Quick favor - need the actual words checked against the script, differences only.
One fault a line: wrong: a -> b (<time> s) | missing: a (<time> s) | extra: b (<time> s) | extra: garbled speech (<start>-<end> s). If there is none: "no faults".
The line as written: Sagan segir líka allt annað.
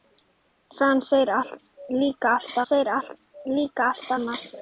extra: segir líka allt (2.7 s)